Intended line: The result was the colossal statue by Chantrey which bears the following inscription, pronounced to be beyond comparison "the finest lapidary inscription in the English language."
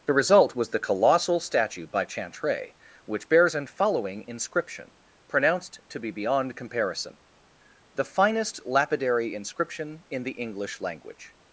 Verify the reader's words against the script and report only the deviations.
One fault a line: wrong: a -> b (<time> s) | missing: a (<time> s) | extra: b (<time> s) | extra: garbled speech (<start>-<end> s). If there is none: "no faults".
wrong: the -> an (3.5 s)